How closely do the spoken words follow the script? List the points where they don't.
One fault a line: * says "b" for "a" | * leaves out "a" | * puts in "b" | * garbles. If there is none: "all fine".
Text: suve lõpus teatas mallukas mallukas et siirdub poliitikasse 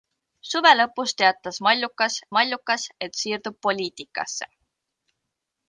all fine